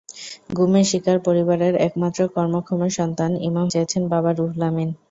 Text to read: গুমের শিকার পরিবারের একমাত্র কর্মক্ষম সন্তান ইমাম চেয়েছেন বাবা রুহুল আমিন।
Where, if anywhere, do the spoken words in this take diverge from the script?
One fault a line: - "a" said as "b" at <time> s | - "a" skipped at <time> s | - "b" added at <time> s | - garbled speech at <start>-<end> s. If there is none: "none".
none